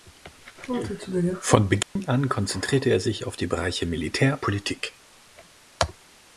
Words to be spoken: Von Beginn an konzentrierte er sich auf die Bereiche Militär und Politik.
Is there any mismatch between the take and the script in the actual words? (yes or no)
yes